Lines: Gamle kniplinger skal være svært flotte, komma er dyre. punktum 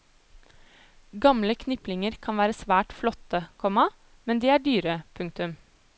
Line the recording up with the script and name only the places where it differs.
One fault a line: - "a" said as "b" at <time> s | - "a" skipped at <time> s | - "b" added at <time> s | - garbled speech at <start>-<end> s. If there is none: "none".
- "skal" said as "kan" at 2.3 s
- "men de" added at 4.2 s